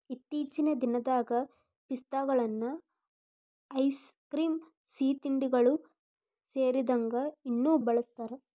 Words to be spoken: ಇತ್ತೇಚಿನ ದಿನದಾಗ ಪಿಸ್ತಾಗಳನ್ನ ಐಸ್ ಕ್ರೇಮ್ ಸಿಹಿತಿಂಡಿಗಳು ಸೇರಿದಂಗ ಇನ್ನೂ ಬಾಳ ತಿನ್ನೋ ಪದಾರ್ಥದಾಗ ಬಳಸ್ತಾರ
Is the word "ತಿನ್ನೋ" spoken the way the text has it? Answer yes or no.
no